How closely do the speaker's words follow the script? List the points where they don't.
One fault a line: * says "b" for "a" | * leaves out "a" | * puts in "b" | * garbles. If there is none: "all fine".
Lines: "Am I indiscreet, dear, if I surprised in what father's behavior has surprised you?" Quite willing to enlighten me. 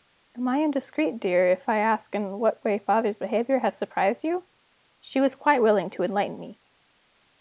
* says "ask" for "surprised"
* puts in "way"
* puts in "She was"